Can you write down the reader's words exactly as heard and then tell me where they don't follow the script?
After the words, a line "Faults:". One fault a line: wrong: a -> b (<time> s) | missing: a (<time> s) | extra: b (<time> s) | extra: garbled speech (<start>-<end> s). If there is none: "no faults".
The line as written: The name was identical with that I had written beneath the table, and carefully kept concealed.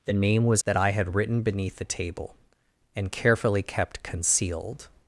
The name was that I had written beneath the table, and carefully kept concealed.
Faults:
missing: identical with (0.6 s)